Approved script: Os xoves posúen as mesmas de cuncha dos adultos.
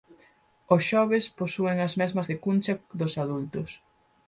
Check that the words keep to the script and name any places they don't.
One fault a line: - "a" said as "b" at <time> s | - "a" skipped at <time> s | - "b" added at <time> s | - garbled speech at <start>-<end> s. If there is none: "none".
none